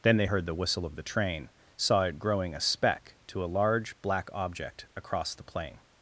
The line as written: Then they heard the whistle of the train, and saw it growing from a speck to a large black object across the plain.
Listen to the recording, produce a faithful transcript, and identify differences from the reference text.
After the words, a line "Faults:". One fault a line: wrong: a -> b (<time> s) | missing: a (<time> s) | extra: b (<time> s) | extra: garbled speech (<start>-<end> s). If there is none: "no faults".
Then they heard the whistle of the train, saw it growing a speck to a large black object across the plain.
Faults:
missing: and (1.5 s)
missing: from (2.5 s)